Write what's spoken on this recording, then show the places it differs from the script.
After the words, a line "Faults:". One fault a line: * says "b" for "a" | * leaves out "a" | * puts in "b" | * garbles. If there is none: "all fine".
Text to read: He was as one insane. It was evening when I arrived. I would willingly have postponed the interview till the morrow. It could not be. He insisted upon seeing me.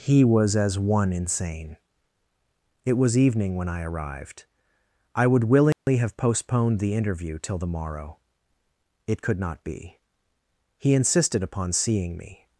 He was as one insane. It was evening when I arrived. I would willingly have postponed the interview till the morrow. It could not be. He insisted upon seeing me.
Faults:
all fine